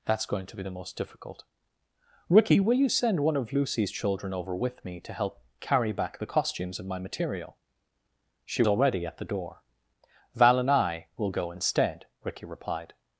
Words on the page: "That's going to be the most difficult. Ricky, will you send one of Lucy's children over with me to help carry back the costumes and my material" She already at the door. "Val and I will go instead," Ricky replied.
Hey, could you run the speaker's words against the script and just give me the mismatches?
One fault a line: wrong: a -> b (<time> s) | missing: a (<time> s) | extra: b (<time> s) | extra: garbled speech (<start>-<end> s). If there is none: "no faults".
no faults